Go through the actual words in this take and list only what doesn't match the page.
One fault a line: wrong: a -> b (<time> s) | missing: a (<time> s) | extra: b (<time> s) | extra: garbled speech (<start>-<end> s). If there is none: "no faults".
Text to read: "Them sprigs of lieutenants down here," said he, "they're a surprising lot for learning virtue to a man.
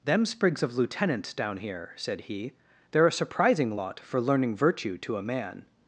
no faults